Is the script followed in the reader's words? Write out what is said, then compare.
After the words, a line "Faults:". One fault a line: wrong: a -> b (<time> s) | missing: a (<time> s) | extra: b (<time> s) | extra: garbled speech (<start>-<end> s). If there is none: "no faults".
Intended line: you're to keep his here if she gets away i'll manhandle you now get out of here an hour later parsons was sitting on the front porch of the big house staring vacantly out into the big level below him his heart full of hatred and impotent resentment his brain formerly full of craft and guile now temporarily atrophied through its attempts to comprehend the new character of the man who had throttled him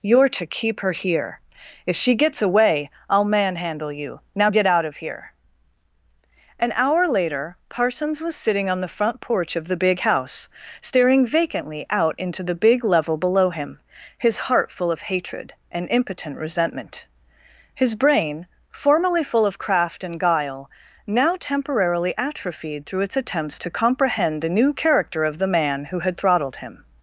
you're to keep her here if she gets away i'll manhandle you now get out of here an hour later parsons was sitting on the front porch of the big house staring vacantly out into the big level below him his heart full of hatred and impotent resentment his brain formerly full of craft and guile now temporarily atrophied through its attempts to comprehend the new character of the man who had throttled him
Faults:
wrong: his -> her (0.8 s)